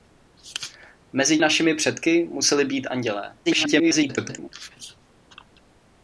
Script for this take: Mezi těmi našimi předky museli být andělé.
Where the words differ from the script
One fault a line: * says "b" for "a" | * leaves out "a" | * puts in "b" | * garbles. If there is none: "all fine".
* leaves out "těmi"
* garbles